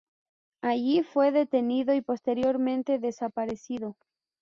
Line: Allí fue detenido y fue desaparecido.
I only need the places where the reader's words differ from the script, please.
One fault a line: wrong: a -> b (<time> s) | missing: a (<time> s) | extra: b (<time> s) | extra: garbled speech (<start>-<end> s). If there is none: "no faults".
wrong: fue -> posteriormente (2.0 s)